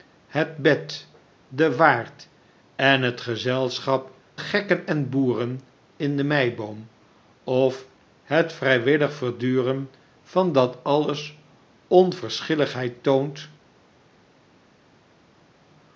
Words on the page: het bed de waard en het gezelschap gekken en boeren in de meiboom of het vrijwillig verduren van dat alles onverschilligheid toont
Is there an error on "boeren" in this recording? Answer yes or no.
no